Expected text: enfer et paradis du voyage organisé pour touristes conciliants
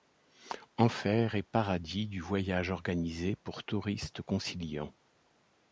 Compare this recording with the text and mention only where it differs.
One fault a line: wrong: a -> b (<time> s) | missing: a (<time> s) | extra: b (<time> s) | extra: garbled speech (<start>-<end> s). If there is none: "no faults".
no faults